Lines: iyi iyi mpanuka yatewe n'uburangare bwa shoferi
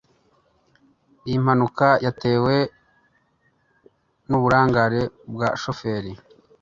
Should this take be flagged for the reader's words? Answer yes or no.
yes